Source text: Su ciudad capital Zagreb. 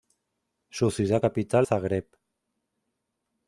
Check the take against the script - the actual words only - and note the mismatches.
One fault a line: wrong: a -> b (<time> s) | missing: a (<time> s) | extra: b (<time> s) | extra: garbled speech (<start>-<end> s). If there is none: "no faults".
no faults